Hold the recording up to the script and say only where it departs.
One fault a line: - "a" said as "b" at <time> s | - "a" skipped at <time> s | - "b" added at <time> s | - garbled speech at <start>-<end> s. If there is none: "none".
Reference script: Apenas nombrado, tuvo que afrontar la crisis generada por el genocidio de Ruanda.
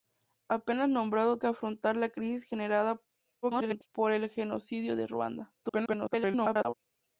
- "tuvo" skipped at 1.4 s
- garbled speech at 3.4-3.9 s
- garbled speech at 5.6-6.7 s